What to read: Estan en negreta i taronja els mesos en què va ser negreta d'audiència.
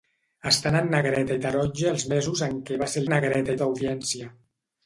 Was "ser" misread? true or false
false